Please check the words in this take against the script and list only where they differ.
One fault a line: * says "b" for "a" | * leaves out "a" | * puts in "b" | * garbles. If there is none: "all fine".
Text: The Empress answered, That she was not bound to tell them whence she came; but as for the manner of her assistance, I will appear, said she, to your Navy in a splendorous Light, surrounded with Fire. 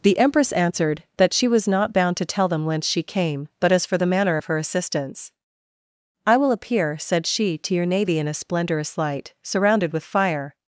all fine